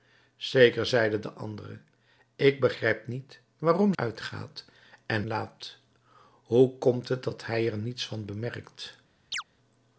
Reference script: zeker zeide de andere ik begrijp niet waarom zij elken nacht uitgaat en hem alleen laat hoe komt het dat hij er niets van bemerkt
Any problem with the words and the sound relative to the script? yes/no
yes